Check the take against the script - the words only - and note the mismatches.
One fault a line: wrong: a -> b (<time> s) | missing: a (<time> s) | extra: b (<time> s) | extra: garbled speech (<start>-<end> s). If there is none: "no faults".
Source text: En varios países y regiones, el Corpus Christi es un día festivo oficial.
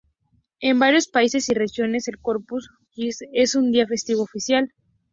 no faults